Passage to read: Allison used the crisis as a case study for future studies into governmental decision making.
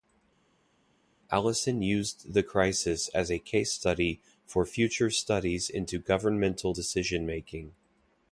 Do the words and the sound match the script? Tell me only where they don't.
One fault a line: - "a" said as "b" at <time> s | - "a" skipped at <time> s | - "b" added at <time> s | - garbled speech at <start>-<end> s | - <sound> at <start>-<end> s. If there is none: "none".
none